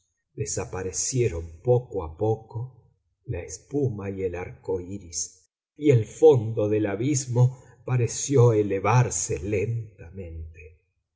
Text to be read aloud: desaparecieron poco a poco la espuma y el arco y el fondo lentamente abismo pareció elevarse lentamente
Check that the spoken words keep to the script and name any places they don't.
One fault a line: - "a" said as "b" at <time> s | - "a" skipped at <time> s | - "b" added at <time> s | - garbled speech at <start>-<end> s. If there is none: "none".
- "iris" added at 4.8 s
- "lentamente" said as "del" at 6.7 s